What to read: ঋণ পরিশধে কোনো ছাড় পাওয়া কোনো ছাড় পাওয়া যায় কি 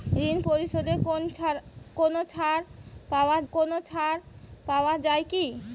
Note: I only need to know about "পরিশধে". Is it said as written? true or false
true